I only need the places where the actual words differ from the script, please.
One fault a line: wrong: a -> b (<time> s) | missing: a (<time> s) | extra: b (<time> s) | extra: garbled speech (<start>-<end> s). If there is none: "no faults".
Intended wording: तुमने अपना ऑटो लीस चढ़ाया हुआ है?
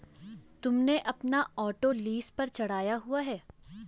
extra: पर (2.3 s)